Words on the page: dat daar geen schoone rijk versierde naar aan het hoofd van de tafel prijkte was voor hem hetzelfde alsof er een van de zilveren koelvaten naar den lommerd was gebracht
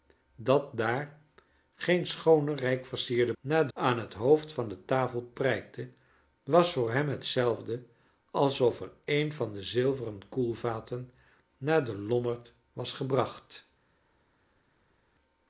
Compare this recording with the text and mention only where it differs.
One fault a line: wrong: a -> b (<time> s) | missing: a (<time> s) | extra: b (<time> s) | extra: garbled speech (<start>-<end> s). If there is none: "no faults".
no faults